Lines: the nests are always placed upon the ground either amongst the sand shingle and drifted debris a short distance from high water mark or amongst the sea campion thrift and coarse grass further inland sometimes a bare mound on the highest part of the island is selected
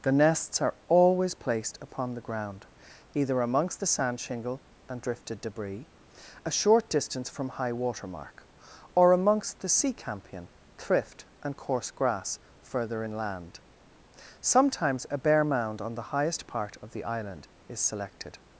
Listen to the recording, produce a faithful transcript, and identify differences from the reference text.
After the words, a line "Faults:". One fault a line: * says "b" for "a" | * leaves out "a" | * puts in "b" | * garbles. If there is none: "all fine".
the nests are always placed upon the ground either amongst the sand shingle and drifted debris a short distance from high water mark or amongst the sea campion thrift and coarse grass further inland sometimes a bare mound on the highest part of the island is selected
Faults:
all fine